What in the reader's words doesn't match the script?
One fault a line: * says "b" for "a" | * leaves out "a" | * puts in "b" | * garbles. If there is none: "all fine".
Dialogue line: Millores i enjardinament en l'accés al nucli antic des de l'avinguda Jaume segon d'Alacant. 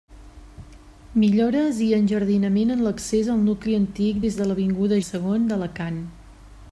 * leaves out "Jaume"